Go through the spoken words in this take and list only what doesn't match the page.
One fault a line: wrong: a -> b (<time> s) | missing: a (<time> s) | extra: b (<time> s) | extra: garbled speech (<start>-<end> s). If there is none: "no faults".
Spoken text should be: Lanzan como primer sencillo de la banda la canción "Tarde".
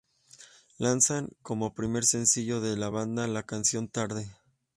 no faults